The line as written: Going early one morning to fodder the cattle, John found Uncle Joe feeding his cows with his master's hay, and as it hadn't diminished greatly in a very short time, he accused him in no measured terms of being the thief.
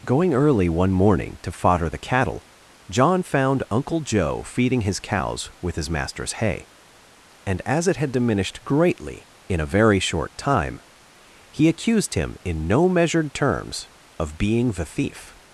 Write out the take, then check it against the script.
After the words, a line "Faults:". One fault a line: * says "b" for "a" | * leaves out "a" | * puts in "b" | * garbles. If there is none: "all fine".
Going early one morning to fodder the cattle, John found Uncle Joe feeding his cows with his master's hay, and as it had diminished greatly in a very short time, he accused him in no measured terms of being the thief.
Faults:
* says "had" for "hadn't"